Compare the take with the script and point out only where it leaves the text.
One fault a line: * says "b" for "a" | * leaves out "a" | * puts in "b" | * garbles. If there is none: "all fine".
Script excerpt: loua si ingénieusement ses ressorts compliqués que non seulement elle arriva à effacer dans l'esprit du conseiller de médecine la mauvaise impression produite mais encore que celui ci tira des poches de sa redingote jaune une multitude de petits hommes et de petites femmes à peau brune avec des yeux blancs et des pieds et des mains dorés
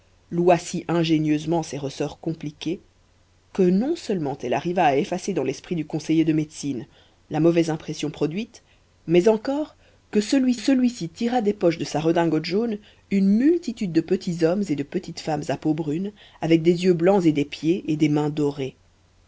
* puts in "celui"